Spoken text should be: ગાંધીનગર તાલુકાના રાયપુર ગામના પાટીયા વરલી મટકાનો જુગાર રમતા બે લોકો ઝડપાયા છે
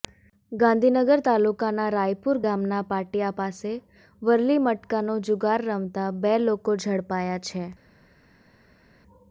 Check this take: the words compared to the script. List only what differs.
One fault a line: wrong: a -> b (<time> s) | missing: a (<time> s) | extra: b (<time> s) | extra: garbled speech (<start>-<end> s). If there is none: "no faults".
extra: પાસે (3.4 s)